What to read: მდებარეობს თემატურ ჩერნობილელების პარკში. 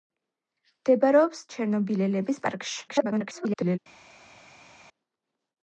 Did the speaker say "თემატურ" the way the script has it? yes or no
no